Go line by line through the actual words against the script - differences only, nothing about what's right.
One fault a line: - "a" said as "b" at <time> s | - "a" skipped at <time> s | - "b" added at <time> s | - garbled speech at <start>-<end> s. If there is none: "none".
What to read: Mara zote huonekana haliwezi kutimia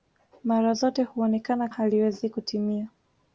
none